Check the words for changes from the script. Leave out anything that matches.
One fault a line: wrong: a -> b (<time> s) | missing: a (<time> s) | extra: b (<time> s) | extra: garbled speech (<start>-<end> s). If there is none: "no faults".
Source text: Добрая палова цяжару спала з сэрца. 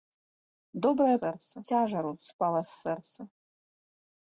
wrong: палова -> сэрца (1.2 s)